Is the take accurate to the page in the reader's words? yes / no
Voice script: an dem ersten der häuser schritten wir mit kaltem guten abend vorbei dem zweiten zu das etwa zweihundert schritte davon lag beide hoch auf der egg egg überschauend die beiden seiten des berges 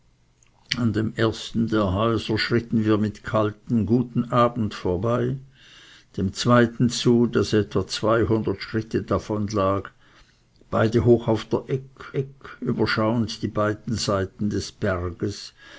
yes